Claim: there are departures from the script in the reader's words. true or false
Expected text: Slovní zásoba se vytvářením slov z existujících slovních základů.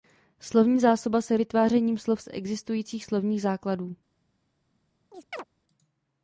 false